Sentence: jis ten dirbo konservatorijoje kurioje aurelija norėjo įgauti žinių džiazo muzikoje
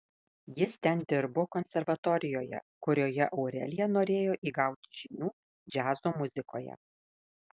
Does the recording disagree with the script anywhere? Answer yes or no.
no